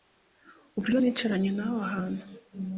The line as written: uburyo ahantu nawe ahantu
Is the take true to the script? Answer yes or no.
no